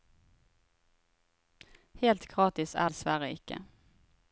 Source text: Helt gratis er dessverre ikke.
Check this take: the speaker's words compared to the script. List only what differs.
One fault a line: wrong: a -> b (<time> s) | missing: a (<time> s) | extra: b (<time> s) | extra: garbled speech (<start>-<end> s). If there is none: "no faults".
no faults